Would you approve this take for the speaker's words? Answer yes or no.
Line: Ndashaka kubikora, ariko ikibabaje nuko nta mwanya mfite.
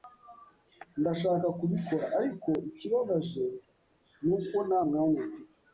yes